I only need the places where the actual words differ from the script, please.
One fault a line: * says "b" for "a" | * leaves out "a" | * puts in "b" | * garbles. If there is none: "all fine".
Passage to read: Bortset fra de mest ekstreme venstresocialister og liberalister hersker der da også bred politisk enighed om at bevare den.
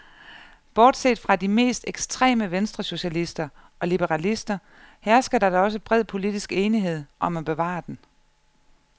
all fine